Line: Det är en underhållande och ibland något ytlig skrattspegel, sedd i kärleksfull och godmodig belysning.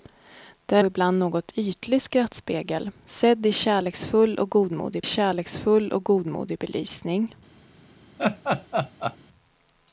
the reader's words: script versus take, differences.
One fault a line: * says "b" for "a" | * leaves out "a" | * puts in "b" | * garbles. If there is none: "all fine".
* leaves out "en underhållande"
* puts in "kärleksfull och godmodig"